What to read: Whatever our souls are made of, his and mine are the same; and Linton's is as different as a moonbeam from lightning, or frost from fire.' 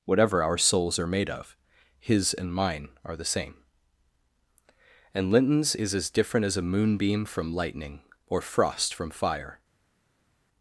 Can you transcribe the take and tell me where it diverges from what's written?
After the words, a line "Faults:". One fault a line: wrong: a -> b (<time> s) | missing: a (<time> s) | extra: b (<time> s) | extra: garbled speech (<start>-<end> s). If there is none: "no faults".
Whatever our souls are made of, his and mine are the same; and Linton's is as different as a moonbeam from lightning, or frost from fire.'
Faults:
no faults